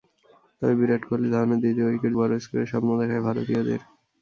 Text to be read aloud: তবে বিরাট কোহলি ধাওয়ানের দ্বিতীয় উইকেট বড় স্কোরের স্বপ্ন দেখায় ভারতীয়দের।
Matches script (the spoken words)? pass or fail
pass